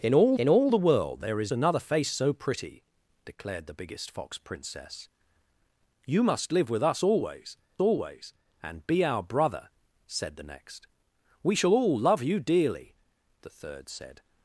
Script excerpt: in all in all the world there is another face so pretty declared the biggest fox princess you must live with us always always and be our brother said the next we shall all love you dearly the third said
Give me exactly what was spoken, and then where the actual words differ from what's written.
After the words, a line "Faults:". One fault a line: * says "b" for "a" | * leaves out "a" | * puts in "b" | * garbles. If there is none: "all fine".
in all in all the world there is another face so pretty declared the biggest fox princess you must live with us always always and be our brother said the next we shall all love you dearly the third said
Faults:
all fine